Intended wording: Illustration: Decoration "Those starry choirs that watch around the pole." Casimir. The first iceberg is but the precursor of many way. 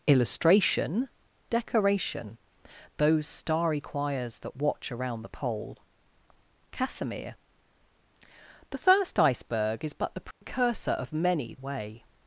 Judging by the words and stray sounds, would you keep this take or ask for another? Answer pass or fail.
fail